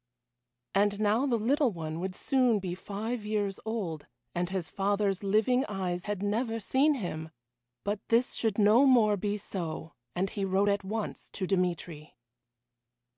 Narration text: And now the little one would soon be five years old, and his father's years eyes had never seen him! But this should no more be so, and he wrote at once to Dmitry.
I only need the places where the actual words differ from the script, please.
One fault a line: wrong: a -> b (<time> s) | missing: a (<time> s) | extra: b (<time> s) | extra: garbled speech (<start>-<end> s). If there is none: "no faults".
wrong: years -> living (5.2 s)